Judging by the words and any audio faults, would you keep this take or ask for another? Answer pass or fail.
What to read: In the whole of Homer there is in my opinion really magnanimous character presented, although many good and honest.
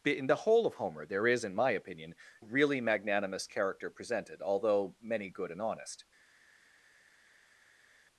pass